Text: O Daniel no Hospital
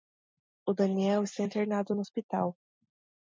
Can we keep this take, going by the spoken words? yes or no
no